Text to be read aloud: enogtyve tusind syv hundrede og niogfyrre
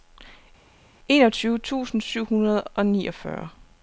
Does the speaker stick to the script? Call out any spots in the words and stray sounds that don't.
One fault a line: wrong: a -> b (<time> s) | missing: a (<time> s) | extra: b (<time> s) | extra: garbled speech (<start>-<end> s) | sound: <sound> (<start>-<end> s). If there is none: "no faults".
no faults